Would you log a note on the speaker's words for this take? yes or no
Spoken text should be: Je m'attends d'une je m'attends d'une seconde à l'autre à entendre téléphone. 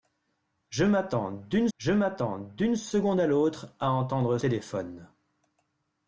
no